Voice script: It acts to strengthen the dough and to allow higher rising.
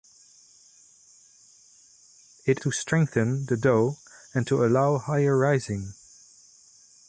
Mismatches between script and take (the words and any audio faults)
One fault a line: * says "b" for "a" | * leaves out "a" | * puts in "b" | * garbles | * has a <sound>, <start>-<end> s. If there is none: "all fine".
* leaves out "acts"